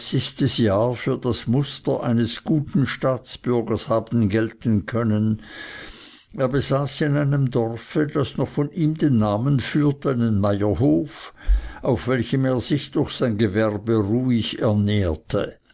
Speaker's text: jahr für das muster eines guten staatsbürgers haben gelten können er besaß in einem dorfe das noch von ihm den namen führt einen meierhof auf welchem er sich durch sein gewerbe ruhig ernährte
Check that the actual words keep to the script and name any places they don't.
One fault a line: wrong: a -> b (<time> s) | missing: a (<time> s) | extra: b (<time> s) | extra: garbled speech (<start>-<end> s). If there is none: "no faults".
no faults